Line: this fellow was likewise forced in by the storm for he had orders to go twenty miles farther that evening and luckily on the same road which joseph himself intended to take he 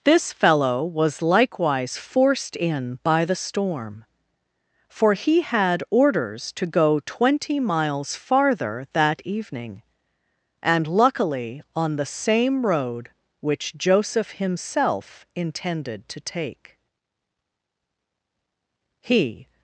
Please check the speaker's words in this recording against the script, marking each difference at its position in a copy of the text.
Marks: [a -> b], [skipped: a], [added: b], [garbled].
this fellow was likewise forced in by the storm for he had orders to go twenty miles farther that evening and luckily on the same road which joseph himself intended to take he